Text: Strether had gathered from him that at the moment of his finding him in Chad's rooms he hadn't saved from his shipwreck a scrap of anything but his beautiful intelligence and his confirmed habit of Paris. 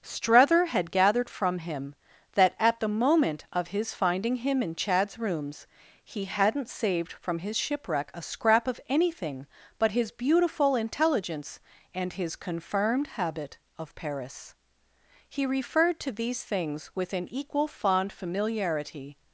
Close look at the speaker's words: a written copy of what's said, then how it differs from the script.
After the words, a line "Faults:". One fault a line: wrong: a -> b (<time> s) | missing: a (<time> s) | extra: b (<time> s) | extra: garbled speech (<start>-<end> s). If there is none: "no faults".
Strether had gathered from him that at the moment of his finding him in Chad's rooms he hadn't saved from his shipwreck a scrap of anything but his beautiful intelligence and his confirmed habit of Paris. He referred to these things with an equal fond familiarity
Faults:
extra: He referred to these things with an equal fond familiarity (15.3 s)